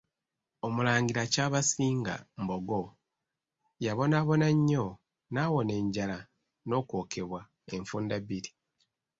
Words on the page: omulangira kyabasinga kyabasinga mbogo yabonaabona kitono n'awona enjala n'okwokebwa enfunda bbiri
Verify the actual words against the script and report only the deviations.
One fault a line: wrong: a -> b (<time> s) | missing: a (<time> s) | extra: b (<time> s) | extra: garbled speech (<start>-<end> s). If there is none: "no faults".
missing: kyabasinga (2.1 s)
wrong: kitono -> nnyo (4.6 s)